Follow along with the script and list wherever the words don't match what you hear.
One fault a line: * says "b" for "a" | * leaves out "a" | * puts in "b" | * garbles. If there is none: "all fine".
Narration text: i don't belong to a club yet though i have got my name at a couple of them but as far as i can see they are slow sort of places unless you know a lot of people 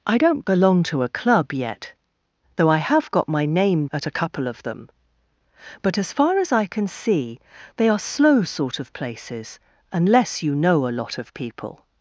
all fine